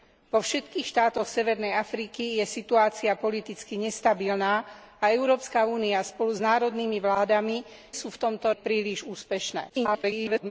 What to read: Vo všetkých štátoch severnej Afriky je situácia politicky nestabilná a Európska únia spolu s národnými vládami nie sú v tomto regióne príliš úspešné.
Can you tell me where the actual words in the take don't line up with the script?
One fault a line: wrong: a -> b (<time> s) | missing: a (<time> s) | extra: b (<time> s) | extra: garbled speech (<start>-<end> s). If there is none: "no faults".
missing: nie (7.7 s)
missing: regióne (8.5 s)
extra: garbled speech (9.7-10.5 s)